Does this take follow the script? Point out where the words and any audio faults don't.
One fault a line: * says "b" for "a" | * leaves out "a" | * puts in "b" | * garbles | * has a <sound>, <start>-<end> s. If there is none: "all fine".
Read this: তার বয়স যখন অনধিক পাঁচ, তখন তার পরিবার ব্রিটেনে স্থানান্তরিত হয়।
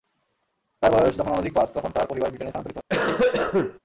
* has a cough, 2.9-3.8 s